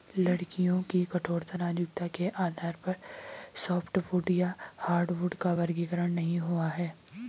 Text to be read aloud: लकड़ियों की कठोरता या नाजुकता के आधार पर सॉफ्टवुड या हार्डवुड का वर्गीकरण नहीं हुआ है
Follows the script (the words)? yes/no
no